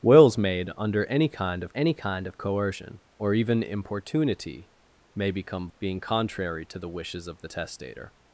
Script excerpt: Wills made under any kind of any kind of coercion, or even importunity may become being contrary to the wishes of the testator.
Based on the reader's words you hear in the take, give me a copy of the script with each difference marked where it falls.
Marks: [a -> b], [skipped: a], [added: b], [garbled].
Wills made under any kind of any kind of coercion, or even importunity may become being contrary to the wishes of the testator.